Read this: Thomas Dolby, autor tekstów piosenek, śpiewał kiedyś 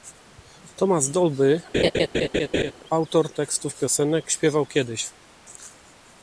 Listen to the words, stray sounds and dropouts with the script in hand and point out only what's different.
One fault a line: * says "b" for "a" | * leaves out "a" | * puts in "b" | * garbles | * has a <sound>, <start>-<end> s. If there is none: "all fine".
* has a laugh, 1.7-2.7 s